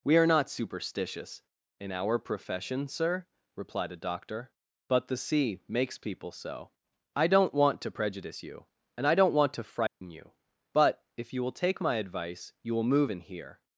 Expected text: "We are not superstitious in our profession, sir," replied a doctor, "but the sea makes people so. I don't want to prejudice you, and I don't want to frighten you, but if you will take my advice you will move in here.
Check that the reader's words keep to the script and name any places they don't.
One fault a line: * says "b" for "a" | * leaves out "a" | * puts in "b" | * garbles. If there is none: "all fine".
all fine